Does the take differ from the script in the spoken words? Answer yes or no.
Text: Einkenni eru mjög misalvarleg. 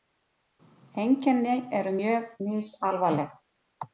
no